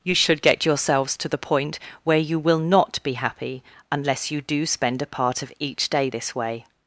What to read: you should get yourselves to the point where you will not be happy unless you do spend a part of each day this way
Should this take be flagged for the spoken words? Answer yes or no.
no